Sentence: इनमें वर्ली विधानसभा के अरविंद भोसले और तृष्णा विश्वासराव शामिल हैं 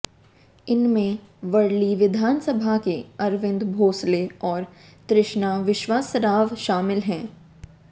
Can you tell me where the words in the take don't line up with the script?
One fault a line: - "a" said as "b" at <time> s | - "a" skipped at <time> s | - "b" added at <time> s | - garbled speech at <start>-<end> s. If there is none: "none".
none